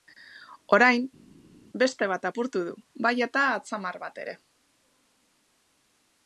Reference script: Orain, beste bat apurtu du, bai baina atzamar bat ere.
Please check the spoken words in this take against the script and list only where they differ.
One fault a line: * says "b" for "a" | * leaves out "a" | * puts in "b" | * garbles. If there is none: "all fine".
* says "eta" for "baina"